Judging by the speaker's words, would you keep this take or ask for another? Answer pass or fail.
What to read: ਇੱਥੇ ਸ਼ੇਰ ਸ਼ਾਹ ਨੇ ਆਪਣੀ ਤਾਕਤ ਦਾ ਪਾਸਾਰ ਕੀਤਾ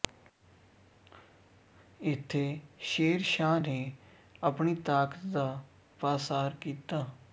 pass